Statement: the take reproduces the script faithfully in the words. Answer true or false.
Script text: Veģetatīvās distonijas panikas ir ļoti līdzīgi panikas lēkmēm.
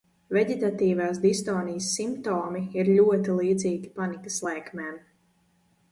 false